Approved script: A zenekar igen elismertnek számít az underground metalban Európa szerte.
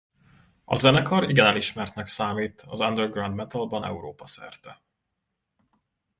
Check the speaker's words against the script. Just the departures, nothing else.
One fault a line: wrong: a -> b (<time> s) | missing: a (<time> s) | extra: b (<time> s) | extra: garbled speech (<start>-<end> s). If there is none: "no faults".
no faults